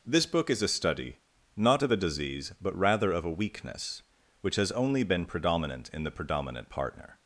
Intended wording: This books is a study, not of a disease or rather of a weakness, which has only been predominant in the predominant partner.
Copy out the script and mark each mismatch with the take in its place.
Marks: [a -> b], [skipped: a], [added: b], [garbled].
This [books -> book] is a study, not of a disease [or -> but] rather of a weakness, which has only been predominant in the predominant partner.